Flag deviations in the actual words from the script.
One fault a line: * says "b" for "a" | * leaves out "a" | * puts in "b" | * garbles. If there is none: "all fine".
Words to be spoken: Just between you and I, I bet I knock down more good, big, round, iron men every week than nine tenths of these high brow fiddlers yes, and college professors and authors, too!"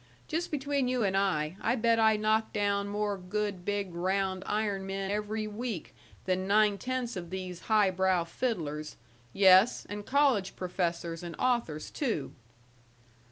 all fine